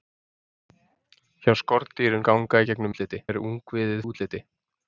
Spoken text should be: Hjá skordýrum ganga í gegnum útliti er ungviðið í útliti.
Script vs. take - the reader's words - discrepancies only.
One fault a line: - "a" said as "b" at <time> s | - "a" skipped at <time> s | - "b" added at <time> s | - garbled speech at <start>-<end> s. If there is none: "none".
none